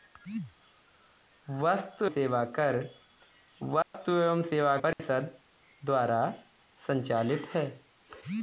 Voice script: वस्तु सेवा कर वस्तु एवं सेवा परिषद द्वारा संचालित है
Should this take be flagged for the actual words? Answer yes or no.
no